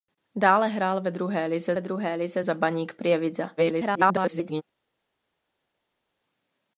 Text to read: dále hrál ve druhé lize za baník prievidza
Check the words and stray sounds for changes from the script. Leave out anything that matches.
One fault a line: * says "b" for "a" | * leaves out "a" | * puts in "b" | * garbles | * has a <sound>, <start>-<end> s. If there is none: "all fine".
* puts in "ve druhé lize"
* garbles